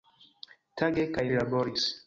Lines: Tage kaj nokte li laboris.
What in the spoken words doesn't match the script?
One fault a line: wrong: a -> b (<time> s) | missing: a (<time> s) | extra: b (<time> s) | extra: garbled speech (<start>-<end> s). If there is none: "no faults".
missing: nokte (1.2 s)